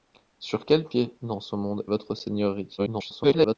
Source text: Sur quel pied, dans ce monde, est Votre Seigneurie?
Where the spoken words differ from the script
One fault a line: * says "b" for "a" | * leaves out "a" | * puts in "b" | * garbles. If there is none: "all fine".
* leaves out "est"
* garbles